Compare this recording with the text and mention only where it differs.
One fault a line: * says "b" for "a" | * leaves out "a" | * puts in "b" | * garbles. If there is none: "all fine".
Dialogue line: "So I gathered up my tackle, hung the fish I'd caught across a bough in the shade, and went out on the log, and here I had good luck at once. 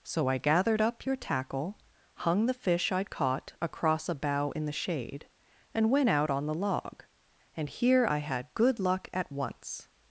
* says "your" for "my"